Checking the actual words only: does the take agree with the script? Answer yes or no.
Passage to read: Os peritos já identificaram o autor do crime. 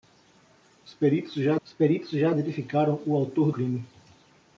no